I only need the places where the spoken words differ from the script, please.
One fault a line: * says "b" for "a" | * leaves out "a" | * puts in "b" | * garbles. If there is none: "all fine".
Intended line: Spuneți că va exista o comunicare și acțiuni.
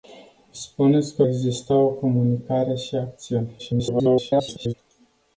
* leaves out "va"
* garbles